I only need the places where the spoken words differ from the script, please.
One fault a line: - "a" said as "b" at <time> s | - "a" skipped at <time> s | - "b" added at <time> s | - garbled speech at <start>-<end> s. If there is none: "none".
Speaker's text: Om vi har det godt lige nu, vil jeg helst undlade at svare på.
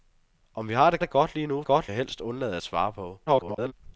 - "det" added at 1.0 s
- "vil" said as "godt" at 1.6 s
- garbled speech at 3.3-3.7 s